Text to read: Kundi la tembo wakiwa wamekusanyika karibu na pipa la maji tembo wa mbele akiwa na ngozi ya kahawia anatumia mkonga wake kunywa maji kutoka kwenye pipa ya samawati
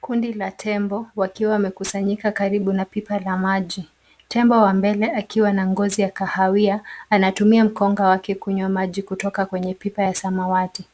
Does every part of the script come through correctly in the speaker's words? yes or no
yes